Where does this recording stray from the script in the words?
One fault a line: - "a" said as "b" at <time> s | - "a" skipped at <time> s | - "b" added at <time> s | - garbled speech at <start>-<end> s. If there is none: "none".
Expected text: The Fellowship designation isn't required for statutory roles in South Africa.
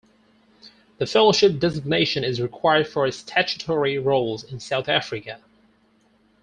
- "isn't" said as "is" at 2.2 s